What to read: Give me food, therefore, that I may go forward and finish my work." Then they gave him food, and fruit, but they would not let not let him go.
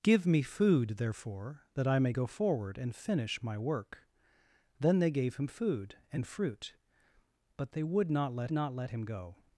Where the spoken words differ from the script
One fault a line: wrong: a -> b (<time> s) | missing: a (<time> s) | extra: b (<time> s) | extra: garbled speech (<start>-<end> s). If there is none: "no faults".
no faults